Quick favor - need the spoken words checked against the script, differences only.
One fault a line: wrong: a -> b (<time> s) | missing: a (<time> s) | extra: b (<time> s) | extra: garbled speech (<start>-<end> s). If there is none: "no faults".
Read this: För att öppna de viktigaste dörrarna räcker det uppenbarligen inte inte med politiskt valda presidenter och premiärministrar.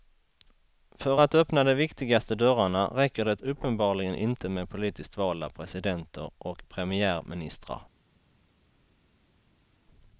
missing: inte (4.5 s)